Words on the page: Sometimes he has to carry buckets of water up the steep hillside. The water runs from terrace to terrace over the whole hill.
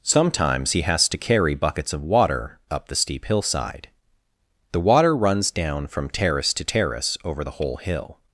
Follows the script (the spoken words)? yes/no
no